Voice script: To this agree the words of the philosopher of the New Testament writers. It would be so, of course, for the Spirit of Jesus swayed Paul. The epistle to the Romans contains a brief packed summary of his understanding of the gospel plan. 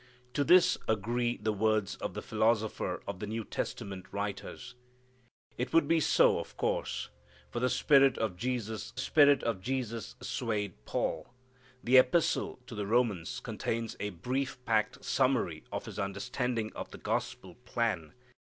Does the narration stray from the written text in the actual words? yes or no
yes